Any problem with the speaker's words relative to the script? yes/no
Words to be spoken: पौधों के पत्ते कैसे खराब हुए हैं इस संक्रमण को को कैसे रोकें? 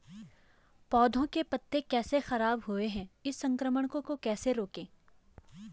no